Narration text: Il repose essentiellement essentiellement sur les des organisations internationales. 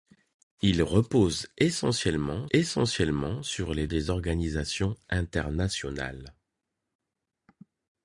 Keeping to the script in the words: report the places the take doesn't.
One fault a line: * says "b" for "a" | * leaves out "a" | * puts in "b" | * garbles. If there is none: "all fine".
all fine